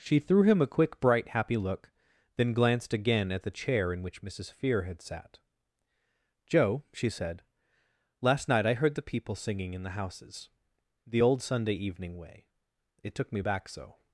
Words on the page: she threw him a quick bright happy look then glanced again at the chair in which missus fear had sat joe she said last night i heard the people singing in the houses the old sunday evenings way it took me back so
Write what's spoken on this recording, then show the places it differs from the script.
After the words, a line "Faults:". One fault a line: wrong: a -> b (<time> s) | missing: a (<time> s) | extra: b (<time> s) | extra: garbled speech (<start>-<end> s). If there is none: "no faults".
she threw him a quick bright happy look then glanced again at the chair in which missus fear had sat joe she said last night i heard the people singing in the houses the old sunday evening way it took me back so
Faults:
wrong: evenings -> evening (11.7 s)